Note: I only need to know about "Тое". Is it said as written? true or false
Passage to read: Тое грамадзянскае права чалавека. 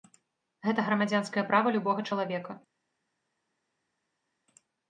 false